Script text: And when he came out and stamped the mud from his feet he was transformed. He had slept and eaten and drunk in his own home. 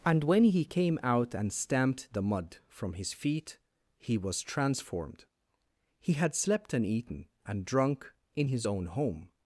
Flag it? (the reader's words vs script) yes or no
no